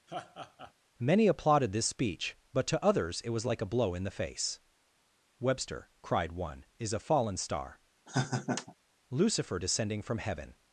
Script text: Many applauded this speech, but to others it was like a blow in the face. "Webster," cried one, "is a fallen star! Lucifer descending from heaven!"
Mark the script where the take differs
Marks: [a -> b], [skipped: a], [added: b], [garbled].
Many applauded this speech, but to others it was like a blow in the face. "Webster," cried one, "is a fallen star! Lucifer descending from heaven!"